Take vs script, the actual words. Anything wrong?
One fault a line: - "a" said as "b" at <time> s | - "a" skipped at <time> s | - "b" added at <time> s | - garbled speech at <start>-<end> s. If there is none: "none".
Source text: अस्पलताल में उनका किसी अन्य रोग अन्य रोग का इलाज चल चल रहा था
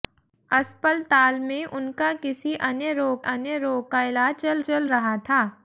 none